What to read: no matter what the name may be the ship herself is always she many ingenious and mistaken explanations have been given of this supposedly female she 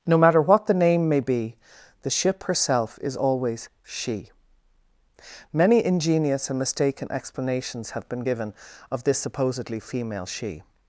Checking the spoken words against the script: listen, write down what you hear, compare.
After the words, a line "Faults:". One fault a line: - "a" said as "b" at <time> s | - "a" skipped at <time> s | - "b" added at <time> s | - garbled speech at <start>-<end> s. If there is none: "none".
no matter what the name may be the ship herself is always she many ingenious and mistaken explanations have been given of this supposedly female she
Faults:
none